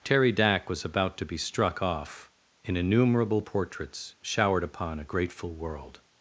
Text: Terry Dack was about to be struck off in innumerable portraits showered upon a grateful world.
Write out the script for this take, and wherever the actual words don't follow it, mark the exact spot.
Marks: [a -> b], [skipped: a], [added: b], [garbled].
Terry Dack was about to be struck off in innumerable portraits showered upon a grateful world.